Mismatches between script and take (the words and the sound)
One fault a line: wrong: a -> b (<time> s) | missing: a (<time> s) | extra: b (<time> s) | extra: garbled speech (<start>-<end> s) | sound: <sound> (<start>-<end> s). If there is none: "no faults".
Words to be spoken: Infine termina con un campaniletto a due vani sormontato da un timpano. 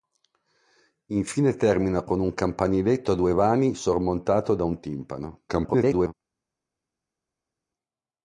extra: garbled speech (5.5-6.1 s)